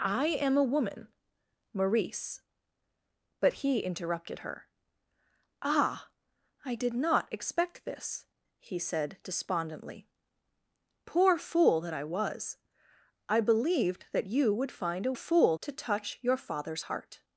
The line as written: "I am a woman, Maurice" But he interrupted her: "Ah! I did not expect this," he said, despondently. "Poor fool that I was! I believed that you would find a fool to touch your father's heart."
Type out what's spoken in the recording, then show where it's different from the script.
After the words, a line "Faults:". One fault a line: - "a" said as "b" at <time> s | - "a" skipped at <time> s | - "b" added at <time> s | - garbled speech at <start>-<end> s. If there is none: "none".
"I am a woman, Maurice" But he interrupted her: "Ah! I did not expect this," he said, despondently. "Poor fool that I was! I believed that you would find a fool to touch your father's heart."
Faults:
none